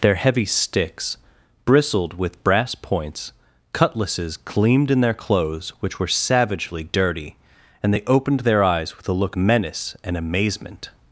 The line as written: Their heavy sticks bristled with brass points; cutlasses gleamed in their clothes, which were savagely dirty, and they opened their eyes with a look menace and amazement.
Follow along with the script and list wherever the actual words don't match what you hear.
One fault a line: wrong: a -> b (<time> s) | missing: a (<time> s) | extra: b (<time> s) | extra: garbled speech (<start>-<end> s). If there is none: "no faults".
no faults